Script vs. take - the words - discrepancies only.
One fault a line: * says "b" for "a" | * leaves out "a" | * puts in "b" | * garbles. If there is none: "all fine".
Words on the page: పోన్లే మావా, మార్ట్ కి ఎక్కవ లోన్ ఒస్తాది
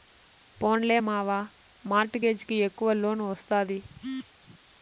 * puts in "గేజ్"